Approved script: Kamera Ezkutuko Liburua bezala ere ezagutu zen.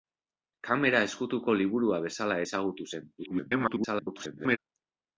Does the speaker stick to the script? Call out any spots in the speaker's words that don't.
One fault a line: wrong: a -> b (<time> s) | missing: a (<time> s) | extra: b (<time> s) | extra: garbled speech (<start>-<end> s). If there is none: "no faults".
missing: ere (2.4 s)
extra: garbled speech (3.2-4.6 s)